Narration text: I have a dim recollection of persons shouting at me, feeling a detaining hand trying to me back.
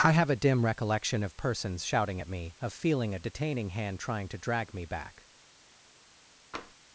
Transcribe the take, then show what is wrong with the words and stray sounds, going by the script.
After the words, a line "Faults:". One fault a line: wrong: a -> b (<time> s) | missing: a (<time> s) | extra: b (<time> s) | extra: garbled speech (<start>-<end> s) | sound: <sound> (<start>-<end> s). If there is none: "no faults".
I have a dim recollection of persons shouting at me, of feeling a detaining hand trying to drag me back.
Faults:
extra: of (2.6 s)
extra: drag (4.4 s)
sound: tap (6.5-6.7 s)